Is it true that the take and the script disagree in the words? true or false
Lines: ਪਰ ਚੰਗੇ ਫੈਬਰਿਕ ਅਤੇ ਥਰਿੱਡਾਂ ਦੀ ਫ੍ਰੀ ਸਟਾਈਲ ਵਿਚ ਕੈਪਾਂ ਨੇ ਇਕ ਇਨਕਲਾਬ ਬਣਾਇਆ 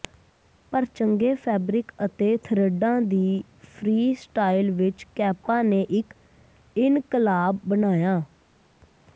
false